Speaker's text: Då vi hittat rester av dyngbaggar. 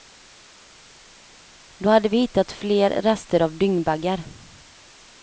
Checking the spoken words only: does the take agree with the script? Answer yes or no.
no